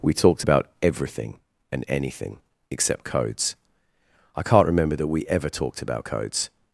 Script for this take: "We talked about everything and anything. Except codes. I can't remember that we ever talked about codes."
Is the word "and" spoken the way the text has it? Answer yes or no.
yes